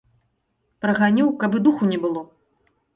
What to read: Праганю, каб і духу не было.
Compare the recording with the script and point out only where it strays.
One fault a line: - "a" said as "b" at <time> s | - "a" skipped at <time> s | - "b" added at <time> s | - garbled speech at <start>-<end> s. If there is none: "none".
none